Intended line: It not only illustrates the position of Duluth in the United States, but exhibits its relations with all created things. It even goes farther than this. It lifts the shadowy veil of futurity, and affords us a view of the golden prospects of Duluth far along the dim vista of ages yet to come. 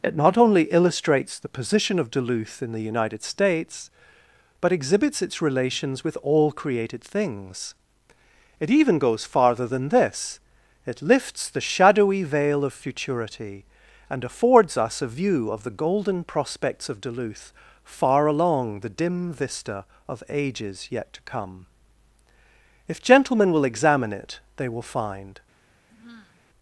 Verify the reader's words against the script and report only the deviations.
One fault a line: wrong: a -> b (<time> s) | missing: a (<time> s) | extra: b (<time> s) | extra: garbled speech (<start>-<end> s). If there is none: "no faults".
extra: If gentlemen will examine it they will find (22.9 s)